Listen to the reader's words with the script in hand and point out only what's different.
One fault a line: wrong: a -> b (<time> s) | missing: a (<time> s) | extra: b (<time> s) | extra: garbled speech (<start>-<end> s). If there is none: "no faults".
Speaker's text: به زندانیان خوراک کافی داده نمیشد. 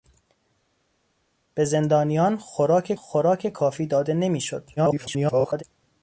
extra: خوراک (2.9 s)
extra: garbled speech (4.8-5.6 s)